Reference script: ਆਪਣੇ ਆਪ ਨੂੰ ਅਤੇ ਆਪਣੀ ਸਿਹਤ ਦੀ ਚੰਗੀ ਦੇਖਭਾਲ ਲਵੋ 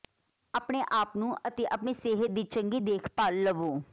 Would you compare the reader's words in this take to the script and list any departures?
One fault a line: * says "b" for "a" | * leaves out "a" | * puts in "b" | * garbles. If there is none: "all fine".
all fine